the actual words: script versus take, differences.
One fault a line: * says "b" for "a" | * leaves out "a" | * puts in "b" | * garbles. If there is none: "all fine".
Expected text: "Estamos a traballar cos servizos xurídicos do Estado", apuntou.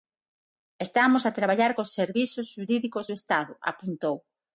all fine